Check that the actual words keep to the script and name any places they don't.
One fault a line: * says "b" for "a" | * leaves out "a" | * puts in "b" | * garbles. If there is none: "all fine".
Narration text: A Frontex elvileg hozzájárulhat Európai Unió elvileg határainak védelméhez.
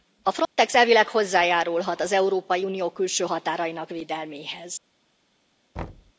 * puts in "az"
* says "külső" for "elvileg"